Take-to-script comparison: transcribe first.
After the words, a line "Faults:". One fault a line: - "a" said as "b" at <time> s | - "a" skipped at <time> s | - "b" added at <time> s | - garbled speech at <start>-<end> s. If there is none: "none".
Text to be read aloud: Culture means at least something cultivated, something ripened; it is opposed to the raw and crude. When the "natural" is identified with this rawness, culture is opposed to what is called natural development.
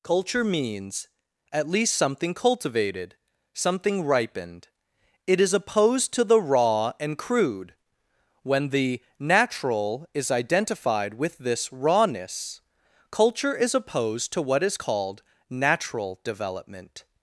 Culture means at least something cultivated, something ripened; it is opposed to the raw and crude. When the "natural" is identified with this rawness, culture is opposed to what is called natural development.
Faults:
none